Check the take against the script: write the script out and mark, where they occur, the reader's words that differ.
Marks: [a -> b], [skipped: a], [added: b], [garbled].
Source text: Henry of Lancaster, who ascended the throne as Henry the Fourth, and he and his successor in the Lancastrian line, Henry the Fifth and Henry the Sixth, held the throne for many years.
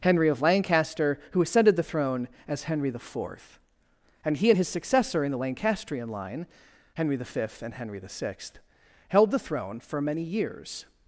Henry of Lancaster, who ascended the throne as Henry the Fourth, and he and his successor in the Lancastrian line, Henry the Fifth and Henry the Sixth, held the throne for many years.